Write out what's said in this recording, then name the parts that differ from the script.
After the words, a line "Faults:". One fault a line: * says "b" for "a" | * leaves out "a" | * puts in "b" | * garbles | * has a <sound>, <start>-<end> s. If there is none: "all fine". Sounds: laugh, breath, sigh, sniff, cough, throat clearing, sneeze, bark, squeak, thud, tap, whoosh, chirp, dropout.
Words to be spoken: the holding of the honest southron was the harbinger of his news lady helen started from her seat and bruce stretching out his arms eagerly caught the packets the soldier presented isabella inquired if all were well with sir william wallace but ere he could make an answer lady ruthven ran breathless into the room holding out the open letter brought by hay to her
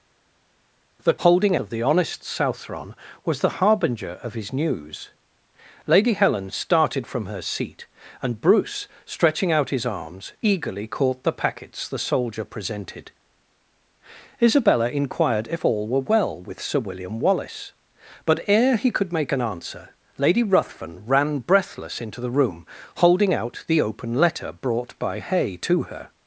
the holding of the honest southron was the harbinger of his news lady helen started from her seat and bruce stretching out his arms eagerly caught the packets the soldier presented isabella inquired if all were well with sir william wallace but ere he could make an answer lady ruthven ran breathless into the room holding out the open letter brought by hay to her
Faults:
all fine